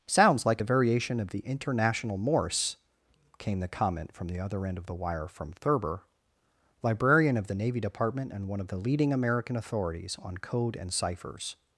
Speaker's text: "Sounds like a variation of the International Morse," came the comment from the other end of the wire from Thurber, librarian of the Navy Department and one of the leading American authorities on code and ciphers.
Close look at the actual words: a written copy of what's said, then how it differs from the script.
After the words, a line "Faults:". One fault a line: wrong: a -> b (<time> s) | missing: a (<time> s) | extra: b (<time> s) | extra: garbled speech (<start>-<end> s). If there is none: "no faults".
"Sounds like a variation of the International Morse," came the comment from the other end of the wire from Thurber, librarian of the Navy Department and one of the leading American authorities on code and ciphers.
Faults:
no faults